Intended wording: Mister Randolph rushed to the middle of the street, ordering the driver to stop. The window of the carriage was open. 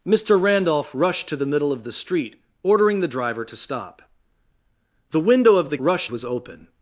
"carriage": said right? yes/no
no